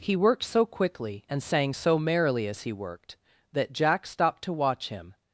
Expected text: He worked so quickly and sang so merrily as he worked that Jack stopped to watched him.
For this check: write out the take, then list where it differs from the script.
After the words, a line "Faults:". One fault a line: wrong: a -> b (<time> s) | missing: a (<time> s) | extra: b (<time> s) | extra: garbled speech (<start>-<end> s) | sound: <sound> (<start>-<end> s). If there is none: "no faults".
He worked so quickly and sang so merrily as he worked that Jack stopped to watch him.
Faults:
wrong: watched -> watch (4.5 s)